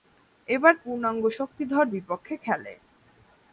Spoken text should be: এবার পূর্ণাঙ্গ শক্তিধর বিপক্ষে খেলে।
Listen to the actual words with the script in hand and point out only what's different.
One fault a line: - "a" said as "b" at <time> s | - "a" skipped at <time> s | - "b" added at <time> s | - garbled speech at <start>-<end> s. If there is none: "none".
none